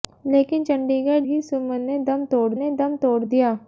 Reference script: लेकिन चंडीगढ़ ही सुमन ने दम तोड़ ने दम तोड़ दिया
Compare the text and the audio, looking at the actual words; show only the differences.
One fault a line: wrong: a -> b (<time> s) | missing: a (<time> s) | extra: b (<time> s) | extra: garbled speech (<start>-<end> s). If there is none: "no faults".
no faults